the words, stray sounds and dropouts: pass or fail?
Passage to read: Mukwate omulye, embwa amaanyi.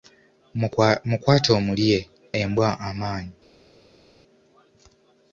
pass